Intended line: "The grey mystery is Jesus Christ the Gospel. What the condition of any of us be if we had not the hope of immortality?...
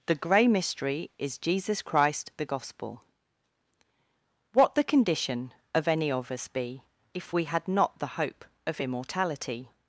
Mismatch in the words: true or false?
false